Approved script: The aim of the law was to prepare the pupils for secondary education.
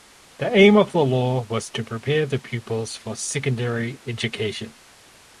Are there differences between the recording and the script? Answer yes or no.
no